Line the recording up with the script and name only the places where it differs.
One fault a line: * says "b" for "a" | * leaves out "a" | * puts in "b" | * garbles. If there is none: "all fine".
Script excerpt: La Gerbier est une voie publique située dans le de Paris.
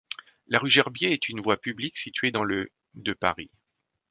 * puts in "rue"